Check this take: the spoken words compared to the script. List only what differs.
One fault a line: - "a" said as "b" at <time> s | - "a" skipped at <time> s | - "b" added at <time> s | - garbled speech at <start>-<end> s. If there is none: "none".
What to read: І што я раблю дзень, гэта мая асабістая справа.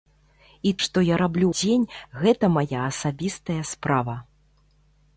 none